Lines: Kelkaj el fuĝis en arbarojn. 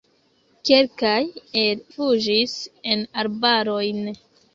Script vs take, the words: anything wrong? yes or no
no